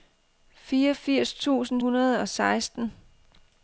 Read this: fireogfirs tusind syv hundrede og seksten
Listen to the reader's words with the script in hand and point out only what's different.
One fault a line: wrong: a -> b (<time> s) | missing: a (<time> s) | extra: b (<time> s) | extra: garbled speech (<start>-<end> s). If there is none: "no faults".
missing: syv (1.8 s)